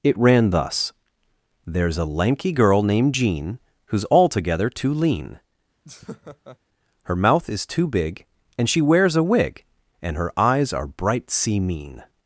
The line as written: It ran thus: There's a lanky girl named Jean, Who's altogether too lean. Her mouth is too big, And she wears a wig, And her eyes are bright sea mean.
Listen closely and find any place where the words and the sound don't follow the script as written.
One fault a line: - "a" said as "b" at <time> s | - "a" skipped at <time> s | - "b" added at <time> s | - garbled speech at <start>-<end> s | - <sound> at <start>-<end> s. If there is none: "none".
- laugh at 5.8-6.6 s